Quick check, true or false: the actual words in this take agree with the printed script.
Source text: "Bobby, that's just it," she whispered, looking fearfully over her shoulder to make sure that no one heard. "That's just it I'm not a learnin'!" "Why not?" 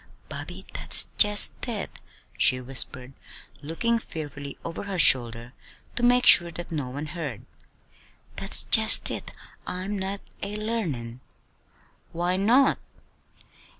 true